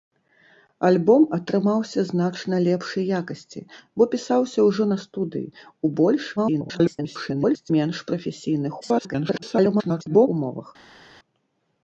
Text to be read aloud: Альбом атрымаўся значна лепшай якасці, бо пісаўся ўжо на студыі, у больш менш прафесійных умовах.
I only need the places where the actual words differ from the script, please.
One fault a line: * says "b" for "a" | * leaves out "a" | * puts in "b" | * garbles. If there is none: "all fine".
* garbles
* garbles